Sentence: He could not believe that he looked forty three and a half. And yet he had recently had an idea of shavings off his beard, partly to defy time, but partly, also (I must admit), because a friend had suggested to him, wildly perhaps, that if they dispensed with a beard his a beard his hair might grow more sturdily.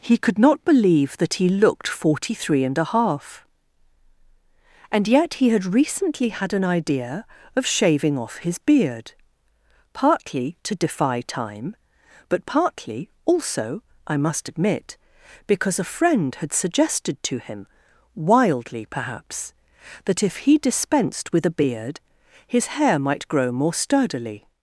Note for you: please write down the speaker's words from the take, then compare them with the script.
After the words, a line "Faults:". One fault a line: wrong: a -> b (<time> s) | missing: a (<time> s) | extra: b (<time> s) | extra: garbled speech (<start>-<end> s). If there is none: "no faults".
He could not believe that he looked forty three and a half. And yet he had recently had an idea of shaving off his beard, partly to defy time, but partly, also (I must admit), because a friend had suggested to him, wildly perhaps, that if he dispensed with a beard his hair might grow more sturdily.
Faults:
wrong: shavings -> shaving (7.7 s)
wrong: they -> he (20.5 s)
missing: a beard his (22.7 s)